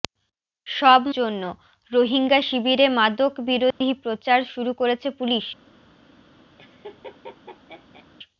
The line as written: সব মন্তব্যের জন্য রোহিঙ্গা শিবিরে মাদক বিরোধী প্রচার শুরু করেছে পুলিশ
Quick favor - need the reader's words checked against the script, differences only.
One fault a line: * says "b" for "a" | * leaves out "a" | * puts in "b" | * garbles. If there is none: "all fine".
* leaves out "মন্তব্যের"